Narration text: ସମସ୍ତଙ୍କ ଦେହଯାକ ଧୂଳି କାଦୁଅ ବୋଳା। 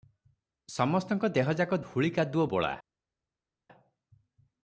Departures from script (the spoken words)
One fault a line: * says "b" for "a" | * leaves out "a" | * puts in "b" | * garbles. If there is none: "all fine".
all fine